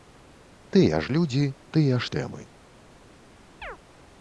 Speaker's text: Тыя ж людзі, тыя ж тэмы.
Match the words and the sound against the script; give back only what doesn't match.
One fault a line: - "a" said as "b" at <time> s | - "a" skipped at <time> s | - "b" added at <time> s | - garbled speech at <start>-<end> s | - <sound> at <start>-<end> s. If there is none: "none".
- chirp at 3.6-3.8 s